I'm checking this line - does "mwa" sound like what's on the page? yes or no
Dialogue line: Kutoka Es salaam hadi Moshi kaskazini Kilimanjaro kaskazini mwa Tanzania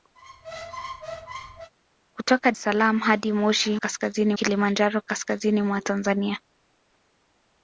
yes